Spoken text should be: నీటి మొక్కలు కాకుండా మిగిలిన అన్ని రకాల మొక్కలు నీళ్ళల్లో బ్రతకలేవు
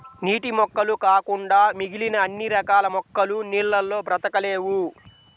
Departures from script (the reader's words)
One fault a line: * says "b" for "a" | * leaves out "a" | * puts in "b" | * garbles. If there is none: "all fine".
all fine